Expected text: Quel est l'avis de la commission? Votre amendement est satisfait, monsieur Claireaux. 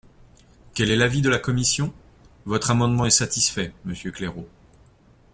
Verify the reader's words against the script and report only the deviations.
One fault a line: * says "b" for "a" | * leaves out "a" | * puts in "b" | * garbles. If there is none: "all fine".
all fine